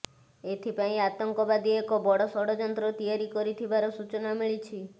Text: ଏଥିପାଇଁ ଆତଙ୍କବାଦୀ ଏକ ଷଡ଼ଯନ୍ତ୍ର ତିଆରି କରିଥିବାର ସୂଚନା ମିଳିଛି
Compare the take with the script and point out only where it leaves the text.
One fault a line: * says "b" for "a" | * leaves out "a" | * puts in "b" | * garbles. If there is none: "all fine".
* puts in "ବଡ଼"